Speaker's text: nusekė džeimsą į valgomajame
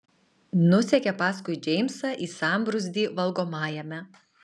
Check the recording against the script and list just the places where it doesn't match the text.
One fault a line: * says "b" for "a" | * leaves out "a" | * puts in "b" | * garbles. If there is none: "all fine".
* puts in "paskui"
* puts in "sambrūzdį"